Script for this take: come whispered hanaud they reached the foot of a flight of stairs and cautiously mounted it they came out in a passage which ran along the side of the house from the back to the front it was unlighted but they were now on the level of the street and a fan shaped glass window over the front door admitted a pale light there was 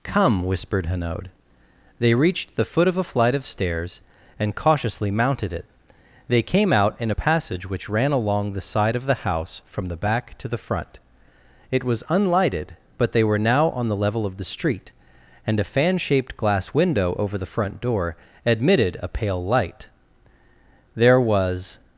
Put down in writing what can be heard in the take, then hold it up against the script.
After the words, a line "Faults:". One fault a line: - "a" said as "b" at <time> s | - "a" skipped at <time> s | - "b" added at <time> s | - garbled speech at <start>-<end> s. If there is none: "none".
come whispered hanaud they reached the foot of a flight of stairs and cautiously mounted it they came out in a passage which ran along the side of the house from the back to the front it was unlighted but they were now on the level of the street and a fan shaped glass window over the front door admitted a pale light there was
Faults:
none